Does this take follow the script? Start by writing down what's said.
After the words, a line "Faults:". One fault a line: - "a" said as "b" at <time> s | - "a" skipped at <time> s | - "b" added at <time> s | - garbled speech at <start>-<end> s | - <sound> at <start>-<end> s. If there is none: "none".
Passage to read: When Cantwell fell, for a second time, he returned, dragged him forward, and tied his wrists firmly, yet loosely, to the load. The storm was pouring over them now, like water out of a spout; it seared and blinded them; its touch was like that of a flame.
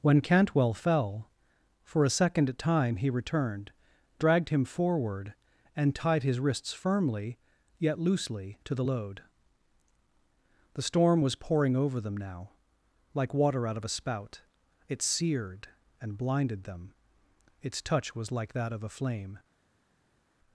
When Cantwell fell, for a second time, he returned, dragged him forward, and tied his wrists firmly, yet loosely, to the load. The storm was pouring over them now, like water out of a spout; it seared and blinded them; its touch was like that of a flame.
Faults:
none